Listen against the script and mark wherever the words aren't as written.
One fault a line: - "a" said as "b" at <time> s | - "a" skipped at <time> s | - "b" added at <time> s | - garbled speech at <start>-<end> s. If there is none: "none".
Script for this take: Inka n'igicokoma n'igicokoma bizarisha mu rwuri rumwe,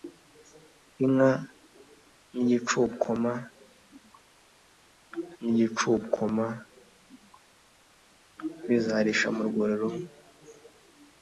none